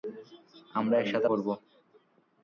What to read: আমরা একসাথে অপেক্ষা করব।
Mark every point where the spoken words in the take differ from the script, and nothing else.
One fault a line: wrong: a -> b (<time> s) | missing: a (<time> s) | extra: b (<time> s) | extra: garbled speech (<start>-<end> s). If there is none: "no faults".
missing: অপেক্ষা (1.3 s)